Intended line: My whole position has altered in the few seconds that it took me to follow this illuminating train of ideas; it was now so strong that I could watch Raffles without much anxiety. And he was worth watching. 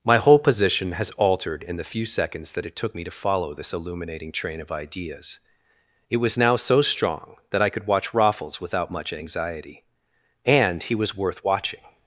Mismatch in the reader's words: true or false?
false